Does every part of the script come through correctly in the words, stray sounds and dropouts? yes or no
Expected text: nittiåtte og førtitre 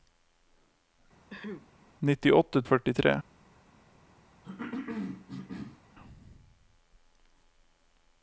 no